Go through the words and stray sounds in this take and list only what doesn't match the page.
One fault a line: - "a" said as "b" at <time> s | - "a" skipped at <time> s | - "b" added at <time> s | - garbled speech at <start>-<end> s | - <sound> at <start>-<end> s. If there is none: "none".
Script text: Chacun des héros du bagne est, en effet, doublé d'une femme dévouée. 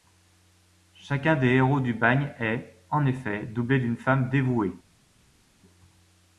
none